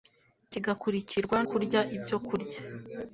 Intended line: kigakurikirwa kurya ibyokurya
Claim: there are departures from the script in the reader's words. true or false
false